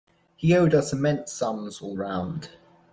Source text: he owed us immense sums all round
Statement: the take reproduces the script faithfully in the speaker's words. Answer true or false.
true